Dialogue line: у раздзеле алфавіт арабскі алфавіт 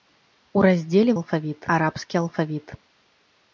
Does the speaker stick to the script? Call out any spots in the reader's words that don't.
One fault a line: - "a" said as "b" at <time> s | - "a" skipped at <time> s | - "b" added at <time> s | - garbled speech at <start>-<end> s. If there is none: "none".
none